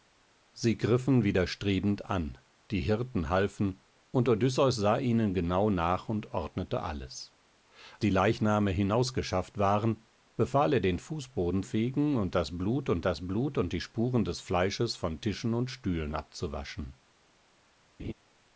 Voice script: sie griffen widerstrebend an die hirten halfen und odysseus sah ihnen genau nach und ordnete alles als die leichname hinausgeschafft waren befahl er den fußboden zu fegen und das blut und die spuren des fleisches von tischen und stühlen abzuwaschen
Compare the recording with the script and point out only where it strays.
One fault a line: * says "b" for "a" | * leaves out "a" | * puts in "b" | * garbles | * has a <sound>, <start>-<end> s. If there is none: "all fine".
* leaves out "als"
* says "fegen und das blut" for "zu fegen"
* has a laugh, 18.0-18.1 s